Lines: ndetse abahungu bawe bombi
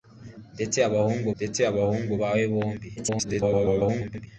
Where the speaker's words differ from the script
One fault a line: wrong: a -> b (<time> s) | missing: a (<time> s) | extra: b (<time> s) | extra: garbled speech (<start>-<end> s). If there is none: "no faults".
extra: ndetse abahungu (1.4 s)
extra: garbled speech (3.0-4.3 s)